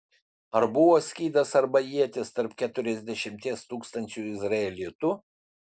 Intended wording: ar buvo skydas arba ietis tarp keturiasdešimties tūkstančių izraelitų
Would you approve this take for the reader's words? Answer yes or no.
yes